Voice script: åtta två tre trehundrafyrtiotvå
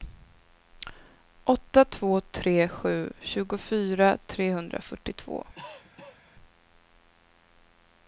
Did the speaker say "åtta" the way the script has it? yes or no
yes